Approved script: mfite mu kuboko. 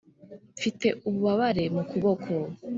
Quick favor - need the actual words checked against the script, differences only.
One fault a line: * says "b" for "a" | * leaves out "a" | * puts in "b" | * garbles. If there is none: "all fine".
* puts in "ububabare"